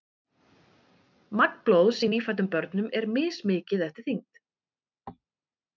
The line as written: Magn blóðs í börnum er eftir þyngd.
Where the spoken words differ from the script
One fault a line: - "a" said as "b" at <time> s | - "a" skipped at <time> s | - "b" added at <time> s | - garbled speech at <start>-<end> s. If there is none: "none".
- "nýfæddum" added at 2.1 s
- "mismikið" added at 3.2 s